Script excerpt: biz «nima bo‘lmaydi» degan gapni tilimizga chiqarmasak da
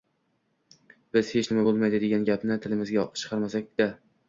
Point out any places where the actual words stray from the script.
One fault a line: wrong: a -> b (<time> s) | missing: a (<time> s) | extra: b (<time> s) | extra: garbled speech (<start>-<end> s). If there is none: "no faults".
extra: hech (1.4 s)